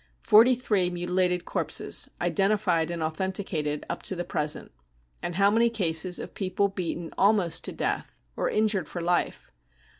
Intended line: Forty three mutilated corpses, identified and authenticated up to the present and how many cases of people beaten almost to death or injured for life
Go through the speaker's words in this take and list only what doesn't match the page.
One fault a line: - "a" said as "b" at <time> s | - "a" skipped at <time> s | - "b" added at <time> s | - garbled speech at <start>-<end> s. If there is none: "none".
none